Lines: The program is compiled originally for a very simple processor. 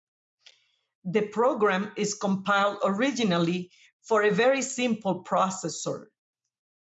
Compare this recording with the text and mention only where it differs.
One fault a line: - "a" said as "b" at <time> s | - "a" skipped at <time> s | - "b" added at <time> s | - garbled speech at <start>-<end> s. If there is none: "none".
none